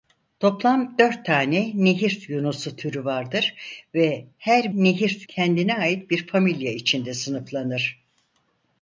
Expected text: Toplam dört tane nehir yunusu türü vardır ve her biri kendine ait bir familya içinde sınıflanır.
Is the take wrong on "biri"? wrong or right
wrong